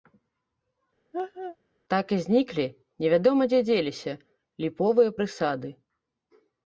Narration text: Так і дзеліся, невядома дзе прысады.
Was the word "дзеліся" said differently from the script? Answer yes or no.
yes